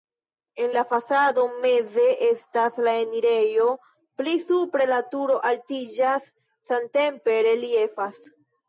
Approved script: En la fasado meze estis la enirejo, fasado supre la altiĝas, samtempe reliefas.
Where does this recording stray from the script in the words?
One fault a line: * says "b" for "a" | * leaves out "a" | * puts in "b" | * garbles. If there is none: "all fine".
* says "estas" for "estis"
* says "pli" for "fasado"
* puts in "turo"